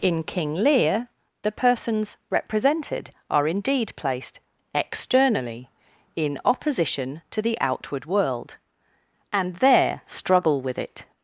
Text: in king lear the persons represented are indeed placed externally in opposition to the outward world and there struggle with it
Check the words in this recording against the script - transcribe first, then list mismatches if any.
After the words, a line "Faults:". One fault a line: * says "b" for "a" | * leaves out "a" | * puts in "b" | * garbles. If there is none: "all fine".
in king lear the persons represented are indeed placed externally in opposition to the outward world and there struggle with it
Faults:
all fine